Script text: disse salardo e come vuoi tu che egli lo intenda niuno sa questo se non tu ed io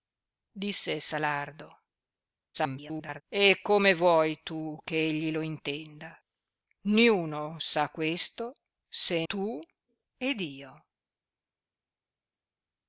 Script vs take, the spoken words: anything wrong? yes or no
yes